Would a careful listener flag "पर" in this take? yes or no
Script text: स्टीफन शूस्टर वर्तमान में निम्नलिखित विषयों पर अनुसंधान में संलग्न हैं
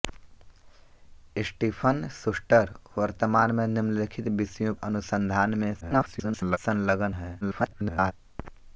yes